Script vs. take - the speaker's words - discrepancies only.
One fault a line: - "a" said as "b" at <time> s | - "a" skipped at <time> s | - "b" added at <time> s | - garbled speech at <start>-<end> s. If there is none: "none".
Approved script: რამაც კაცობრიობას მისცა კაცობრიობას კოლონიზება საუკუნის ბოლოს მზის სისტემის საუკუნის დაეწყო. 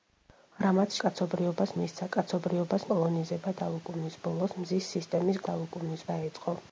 none